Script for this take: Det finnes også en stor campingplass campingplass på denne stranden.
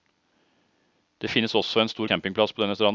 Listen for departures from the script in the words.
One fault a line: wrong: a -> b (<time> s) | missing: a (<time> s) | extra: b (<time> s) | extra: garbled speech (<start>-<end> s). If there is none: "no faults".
missing: campingplass (2.5 s)